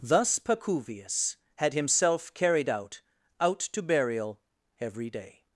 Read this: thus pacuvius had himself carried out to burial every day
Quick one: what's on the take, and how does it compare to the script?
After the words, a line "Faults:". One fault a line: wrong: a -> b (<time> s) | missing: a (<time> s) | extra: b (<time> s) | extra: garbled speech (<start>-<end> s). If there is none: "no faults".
thus pacuvius had himself carried out out to burial every day
Faults:
extra: out (3.4 s)